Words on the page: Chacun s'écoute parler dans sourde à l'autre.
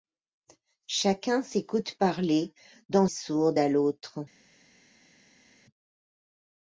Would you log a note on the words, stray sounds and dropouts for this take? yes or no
no